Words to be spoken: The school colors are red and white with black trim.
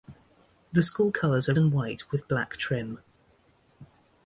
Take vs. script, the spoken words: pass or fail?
fail